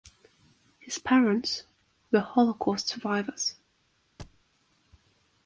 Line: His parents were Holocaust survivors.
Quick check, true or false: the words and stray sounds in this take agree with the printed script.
false